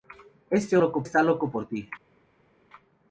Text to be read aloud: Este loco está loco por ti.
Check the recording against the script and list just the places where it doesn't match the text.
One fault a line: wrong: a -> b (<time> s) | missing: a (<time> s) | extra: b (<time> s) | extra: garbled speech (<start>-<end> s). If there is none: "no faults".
no faults